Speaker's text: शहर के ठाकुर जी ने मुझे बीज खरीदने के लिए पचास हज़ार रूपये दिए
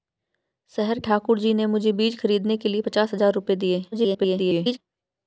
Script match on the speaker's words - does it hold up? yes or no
no